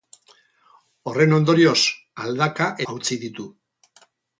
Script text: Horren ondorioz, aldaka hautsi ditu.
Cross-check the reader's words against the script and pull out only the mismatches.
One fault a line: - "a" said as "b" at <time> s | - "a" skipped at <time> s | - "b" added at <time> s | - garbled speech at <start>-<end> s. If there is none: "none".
none